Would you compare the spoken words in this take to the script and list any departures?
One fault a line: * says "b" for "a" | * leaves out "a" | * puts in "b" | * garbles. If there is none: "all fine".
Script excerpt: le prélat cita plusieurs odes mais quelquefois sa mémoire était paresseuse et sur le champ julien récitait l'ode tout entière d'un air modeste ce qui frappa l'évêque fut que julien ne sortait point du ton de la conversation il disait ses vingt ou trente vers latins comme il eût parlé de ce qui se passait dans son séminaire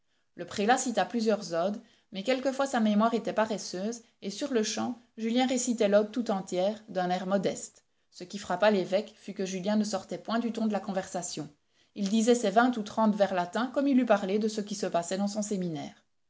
all fine